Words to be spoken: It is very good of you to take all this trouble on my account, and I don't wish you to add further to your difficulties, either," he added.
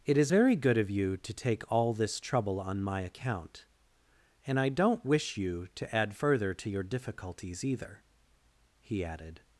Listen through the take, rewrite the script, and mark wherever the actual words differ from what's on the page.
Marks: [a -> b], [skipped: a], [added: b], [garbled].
It is very good of you to take all this trouble on my account, and I don't wish you to add further to your difficulties, either," he added.